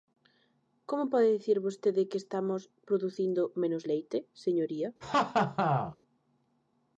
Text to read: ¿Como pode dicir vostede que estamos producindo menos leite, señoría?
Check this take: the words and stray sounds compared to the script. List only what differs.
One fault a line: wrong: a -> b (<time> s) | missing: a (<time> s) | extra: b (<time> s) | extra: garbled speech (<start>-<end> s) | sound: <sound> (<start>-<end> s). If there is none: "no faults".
sound: laugh (5.0-6.0 s)